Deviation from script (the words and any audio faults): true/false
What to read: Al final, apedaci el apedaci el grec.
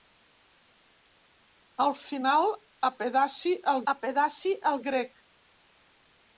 false